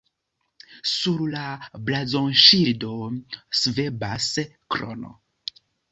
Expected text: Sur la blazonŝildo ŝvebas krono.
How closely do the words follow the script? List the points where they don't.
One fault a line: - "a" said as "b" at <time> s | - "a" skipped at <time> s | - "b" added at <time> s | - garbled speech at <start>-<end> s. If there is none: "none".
none